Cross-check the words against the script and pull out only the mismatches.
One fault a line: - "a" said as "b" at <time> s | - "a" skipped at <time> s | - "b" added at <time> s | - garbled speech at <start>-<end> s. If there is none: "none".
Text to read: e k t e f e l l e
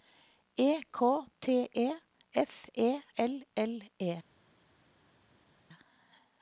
none